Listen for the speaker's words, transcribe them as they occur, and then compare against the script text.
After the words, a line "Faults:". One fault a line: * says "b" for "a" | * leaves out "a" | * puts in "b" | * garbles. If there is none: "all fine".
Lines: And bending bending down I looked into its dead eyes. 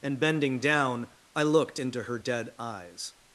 And bending down I looked into her dead eyes.
Faults:
* leaves out "bending"
* says "her" for "its"